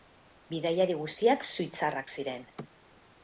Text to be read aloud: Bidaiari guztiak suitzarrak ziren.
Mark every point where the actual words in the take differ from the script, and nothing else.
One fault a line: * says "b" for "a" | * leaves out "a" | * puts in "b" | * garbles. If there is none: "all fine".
all fine